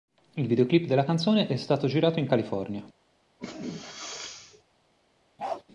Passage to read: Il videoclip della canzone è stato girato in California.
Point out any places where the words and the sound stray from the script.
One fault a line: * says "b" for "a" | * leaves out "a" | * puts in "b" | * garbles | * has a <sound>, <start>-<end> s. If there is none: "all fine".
* has a sneeze, 3.4-4.6 s
* has a bark, 5.4-5.6 s